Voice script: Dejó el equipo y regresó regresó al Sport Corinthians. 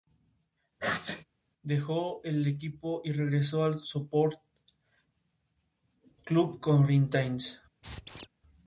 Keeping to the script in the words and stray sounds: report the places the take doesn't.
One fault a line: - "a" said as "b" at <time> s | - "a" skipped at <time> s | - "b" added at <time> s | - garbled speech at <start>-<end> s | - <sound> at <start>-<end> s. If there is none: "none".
- sneeze at 0.8-1.2 s
- "regresó" skipped at 3.6 s
- "Club" added at 6.2 s
- squeak at 7.8-8.3 s